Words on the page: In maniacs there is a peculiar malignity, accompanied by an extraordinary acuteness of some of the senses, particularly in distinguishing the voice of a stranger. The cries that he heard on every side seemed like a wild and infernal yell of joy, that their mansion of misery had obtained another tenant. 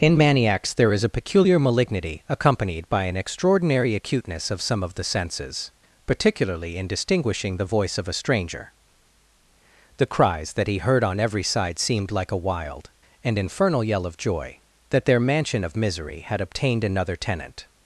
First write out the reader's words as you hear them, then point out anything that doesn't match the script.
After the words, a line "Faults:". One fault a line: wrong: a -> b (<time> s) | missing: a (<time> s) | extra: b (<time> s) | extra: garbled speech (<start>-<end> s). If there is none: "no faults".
In maniacs there is a peculiar malignity, accompanied by an extraordinary acuteness of some of the senses, particularly in distinguishing the voice of a stranger. The cries that he heard on every side seemed like a wild and infernal yell of joy, that their mansion of misery had obtained another tenant.
Faults:
no faults